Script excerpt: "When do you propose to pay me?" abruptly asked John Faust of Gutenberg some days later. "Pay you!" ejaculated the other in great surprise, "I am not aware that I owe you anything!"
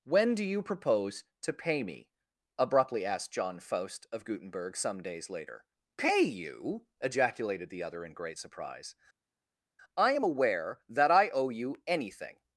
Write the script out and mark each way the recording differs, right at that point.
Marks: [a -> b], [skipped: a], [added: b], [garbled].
"When do you propose to pay me?" abruptly asked John Faust of Gutenberg some days later. "Pay you!" ejaculated the other in great surprise, "I am [skipped: not] aware that I owe you anything!"